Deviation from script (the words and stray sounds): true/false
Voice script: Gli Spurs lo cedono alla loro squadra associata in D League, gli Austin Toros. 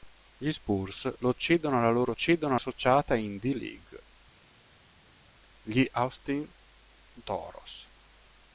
true